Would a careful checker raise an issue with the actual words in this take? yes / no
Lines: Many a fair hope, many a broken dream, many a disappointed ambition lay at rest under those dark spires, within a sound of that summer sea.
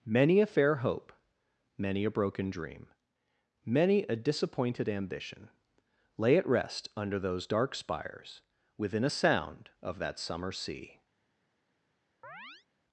no